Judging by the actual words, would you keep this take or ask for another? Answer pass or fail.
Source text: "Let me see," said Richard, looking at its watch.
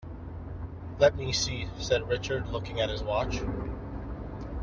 fail